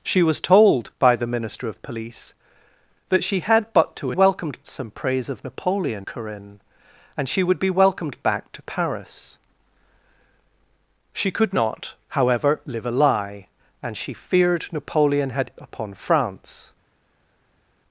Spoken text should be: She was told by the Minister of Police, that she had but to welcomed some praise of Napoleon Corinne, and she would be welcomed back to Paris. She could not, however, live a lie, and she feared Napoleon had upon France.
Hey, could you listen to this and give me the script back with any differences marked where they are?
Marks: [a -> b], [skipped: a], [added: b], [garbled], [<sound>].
She was told by the Minister of Police, that she had but to welcomed some praise of Napoleon Corinne, and she would be welcomed back to Paris. She could not, however, live a lie, and she feared Napoleon had upon France.